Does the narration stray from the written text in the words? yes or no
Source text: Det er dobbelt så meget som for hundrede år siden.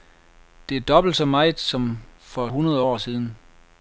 no